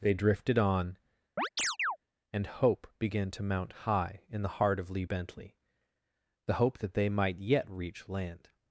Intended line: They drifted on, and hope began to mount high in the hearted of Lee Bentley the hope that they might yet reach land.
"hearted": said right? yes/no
no